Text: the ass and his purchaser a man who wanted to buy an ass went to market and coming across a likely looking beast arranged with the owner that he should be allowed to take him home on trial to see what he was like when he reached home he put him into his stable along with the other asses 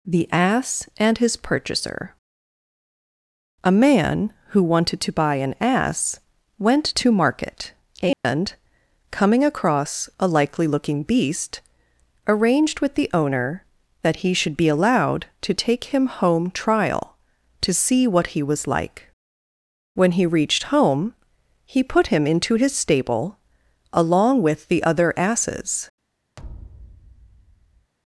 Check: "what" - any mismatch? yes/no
no